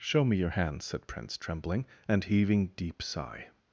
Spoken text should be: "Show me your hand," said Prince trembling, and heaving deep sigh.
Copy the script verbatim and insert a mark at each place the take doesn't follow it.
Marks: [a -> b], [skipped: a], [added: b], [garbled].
"Show me your hand," said Prince trembling, and heaving deep sigh.